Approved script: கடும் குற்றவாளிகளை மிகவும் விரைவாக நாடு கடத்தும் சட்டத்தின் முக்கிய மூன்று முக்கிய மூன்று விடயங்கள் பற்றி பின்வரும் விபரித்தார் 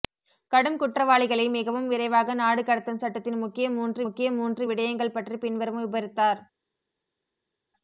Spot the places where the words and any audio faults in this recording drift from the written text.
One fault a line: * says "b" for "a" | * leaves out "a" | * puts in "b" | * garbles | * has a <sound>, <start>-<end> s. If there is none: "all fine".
all fine